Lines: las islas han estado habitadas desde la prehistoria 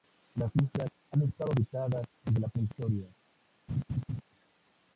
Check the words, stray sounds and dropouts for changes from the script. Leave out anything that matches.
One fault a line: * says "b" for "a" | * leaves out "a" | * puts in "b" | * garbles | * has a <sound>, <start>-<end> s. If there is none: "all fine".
* has a laugh, 3.7-4.2 s